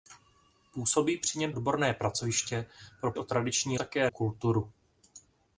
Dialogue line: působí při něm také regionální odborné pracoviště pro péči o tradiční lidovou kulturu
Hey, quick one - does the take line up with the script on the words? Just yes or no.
no